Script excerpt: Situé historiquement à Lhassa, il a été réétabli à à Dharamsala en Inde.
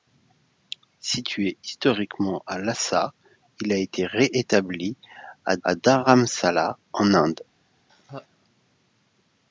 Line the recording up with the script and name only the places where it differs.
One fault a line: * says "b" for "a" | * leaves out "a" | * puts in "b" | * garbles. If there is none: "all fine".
all fine